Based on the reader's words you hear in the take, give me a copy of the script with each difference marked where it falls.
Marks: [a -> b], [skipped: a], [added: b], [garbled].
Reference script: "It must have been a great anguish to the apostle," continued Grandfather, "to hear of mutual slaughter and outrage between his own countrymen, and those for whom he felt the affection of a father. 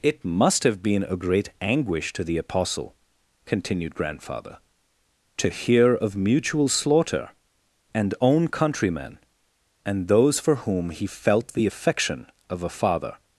"It must have been a great anguish to the apostle," continued Grandfather, "to hear of mutual slaughter and [skipped: outrage between his] own countrymen, and those for whom he felt the affection of a father.